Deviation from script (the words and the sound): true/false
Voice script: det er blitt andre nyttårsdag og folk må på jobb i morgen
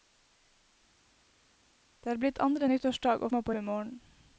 true